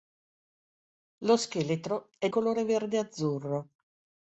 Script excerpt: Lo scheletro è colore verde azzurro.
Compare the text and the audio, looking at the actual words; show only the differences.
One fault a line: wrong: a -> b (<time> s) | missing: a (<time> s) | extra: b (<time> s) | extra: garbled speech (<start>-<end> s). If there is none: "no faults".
no faults